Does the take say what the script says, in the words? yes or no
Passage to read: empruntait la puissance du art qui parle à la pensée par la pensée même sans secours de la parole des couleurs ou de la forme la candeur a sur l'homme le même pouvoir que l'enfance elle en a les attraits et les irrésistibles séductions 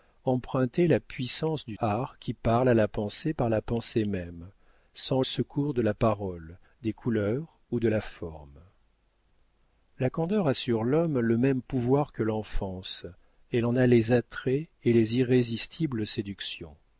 yes